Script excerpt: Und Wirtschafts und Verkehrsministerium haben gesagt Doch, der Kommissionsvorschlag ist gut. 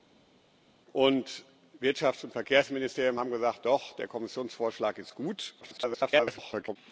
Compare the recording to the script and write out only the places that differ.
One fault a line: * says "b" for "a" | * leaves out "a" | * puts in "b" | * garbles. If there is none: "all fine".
* garbles